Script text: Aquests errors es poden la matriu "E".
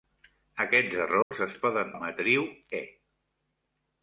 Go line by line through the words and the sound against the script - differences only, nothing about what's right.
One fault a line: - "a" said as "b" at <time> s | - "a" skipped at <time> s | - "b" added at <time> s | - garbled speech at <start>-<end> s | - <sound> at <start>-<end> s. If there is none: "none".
- dropout at 1.2-1.3 s